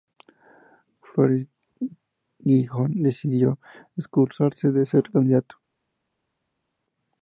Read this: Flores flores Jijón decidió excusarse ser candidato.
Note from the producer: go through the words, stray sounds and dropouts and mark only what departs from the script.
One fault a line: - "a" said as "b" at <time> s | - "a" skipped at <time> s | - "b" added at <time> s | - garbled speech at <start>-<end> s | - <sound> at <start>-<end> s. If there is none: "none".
- "flores" skipped at 1.4 s
- "de" added at 4.7 s